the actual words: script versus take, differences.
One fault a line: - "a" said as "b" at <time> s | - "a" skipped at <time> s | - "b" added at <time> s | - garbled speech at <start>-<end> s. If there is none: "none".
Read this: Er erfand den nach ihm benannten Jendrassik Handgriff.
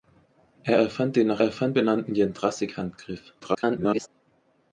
- "ihm" said as "erfand" at 1.4 s
- garbled speech at 3.4-4.1 s